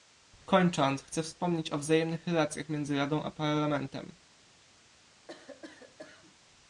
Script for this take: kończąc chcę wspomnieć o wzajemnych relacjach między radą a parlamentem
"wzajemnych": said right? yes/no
yes